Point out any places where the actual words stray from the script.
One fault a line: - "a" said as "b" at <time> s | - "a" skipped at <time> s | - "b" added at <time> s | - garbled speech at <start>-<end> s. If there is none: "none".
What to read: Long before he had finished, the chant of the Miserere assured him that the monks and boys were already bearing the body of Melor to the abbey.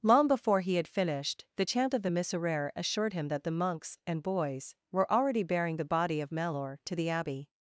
none